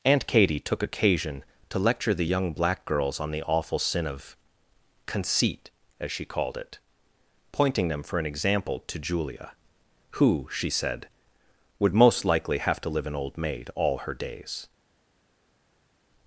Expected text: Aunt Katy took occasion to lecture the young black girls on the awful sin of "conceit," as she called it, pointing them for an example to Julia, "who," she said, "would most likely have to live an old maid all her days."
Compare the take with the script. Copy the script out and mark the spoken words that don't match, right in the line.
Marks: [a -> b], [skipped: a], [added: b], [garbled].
Aunt Katy took occasion to lecture the young black girls on the awful sin of "conceit," as she called it, pointing them for an example to Julia, "who," she said, "would most likely have to live an old maid all her days."